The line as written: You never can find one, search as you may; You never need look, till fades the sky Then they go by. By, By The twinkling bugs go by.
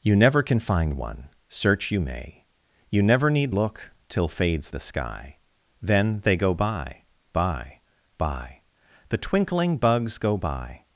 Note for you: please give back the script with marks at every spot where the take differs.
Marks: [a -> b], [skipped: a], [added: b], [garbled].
You never can find one, search [skipped: as] you may; You never need look, till fades the sky Then they go by. By, By The twinkling bugs go by.